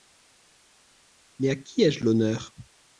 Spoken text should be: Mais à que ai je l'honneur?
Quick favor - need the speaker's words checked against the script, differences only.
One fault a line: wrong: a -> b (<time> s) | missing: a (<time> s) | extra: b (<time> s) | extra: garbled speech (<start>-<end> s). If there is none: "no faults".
wrong: que -> qui (1.5 s)